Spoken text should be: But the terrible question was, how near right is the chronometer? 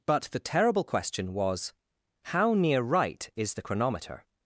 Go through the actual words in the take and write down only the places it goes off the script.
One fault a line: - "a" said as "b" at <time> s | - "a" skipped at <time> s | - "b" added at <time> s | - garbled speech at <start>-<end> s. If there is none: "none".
none